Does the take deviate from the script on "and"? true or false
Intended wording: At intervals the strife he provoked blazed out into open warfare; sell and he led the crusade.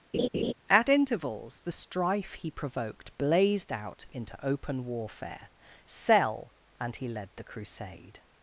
false